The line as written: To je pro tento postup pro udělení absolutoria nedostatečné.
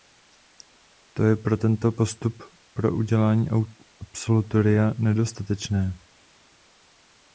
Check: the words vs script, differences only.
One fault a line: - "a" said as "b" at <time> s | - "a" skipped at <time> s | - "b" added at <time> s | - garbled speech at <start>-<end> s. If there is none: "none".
none